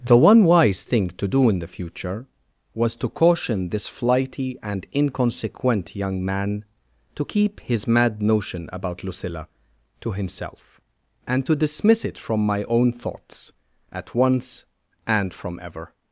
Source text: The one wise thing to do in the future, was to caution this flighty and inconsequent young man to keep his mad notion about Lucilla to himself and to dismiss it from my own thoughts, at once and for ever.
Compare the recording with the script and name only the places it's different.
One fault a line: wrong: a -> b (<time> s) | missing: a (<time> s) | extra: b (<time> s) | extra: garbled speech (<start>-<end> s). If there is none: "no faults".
wrong: for -> from (15.3 s)